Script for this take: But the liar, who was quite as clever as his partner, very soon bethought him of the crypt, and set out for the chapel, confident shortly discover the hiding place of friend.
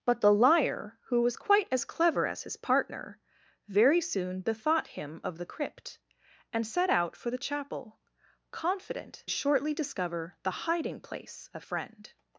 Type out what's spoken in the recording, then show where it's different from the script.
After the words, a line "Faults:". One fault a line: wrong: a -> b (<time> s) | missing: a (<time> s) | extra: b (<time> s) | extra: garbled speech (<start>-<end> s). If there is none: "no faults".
But the liar, who was quite as clever as his partner, very soon bethought him of the crypt, and set out for the chapel, confident shortly discover the hiding place of friend.
Faults:
no faults